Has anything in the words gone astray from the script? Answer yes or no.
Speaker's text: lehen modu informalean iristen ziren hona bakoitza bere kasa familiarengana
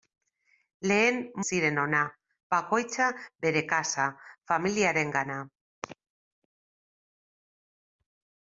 yes